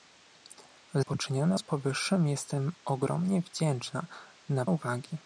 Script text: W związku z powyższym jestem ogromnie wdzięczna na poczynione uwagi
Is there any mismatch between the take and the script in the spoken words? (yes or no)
yes